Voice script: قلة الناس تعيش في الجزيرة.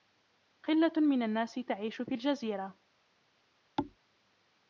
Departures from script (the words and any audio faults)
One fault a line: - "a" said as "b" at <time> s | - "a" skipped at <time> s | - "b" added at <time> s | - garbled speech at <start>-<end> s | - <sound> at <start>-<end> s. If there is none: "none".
- "من" added at 1.0 s
- thud at 3.8-4.0 s